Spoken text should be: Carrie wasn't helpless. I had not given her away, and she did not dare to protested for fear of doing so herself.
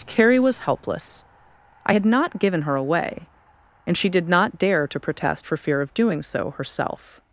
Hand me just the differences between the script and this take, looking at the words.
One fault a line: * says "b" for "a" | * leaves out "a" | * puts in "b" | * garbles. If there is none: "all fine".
* says "was" for "wasn't"
* says "protest" for "protested"